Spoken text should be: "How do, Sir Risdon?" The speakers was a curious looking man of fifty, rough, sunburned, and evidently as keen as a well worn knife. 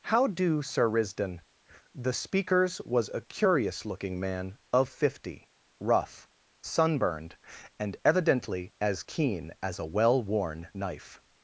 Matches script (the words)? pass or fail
pass